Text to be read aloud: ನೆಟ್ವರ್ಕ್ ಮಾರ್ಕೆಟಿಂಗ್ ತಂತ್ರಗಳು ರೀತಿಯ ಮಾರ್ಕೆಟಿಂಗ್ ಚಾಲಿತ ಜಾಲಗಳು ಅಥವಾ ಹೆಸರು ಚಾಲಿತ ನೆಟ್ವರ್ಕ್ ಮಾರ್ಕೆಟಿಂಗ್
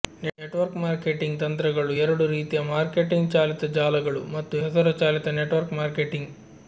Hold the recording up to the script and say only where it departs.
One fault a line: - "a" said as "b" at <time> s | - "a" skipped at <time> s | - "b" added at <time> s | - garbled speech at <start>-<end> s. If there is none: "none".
- "ಎರಡು" added at 2.0 s
- "ಅಥವಾ" said as "ಮತ್ತು" at 4.4 s